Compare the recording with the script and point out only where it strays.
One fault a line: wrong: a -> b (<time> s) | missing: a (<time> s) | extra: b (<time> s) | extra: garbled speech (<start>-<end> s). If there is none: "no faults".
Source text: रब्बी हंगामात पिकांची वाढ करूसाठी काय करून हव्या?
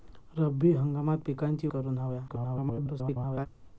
missing: वाढ करूसाठी काय (1.7 s)
extra: garbled speech (2.3-3.5 s)